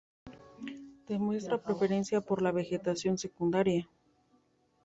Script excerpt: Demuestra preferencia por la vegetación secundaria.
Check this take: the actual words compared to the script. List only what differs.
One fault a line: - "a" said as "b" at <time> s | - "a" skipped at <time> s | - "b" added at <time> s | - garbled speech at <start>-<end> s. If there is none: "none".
none